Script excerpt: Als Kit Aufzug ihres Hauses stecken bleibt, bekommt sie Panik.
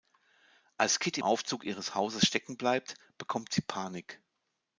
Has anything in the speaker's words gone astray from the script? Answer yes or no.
no